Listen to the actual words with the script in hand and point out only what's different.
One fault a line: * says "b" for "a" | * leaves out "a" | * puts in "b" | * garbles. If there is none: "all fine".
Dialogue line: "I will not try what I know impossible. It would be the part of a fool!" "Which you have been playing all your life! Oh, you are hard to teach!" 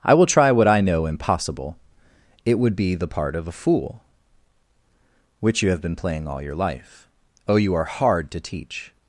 * leaves out "not"